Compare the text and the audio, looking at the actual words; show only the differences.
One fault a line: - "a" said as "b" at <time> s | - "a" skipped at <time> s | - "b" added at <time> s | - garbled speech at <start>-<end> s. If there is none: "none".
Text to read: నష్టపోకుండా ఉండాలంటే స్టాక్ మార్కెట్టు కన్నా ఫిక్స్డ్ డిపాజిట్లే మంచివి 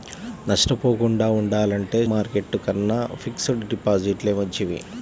- "స్టాక్" skipped at 2.0 s